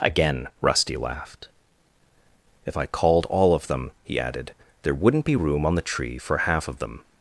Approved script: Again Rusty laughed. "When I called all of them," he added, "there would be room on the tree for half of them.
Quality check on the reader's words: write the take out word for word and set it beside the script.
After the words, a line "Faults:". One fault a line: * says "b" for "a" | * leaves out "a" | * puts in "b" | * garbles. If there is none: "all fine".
Again Rusty laughed. "If I called all of them," he added, "there wouldn't be room on the tree for half of them.
Faults:
* says "If" for "When"
* says "wouldn't" for "would"